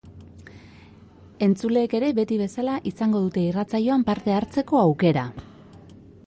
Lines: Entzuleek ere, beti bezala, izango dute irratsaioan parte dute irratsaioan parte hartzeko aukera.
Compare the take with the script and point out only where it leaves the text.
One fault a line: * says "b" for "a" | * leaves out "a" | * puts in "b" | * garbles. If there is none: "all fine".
* leaves out "dute irratsaioan parte"